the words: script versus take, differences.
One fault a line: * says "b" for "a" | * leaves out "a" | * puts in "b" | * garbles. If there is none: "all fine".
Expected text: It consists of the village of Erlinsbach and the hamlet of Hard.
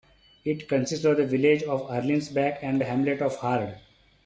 all fine